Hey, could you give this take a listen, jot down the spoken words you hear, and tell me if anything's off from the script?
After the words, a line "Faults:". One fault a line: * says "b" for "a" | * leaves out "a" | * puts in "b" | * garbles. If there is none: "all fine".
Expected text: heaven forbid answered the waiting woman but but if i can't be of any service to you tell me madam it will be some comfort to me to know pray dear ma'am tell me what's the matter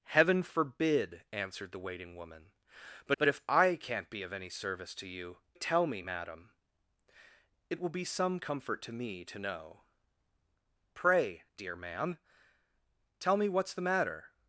heaven forbid answered the waiting woman but but if i can't be of any service to you tell me madam it will be some comfort to me to know pray dear ma'am tell me what's the matter
Faults:
all fine